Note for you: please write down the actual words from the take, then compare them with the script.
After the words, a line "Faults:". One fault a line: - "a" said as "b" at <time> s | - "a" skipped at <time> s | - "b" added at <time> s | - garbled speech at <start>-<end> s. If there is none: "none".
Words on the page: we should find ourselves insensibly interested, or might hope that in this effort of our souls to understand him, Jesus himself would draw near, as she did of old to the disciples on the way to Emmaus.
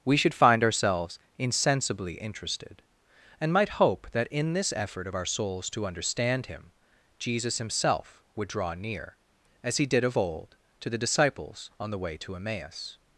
we should find ourselves insensibly interested, and might hope that in this effort of our souls to understand him, Jesus himself would draw near, as he did of old to the disciples on the way to Emmaus.
Faults:
- "or" said as "and" at 3.4 s
- "she" said as "he" at 9.8 s